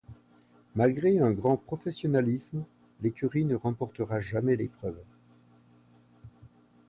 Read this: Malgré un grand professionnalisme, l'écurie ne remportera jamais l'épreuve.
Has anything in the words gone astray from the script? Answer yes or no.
no